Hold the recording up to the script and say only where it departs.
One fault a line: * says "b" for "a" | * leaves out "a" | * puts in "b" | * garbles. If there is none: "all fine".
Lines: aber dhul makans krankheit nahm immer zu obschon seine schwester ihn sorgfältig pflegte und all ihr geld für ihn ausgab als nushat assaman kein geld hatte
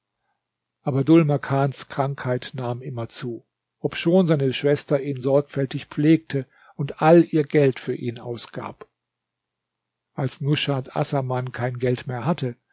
* puts in "mehr"